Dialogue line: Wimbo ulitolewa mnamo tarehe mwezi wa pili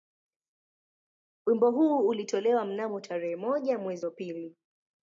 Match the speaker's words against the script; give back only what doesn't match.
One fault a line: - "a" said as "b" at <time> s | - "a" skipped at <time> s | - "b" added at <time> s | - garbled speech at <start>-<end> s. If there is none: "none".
- "huu" added at 1.7 s
- "moja" added at 3.4 s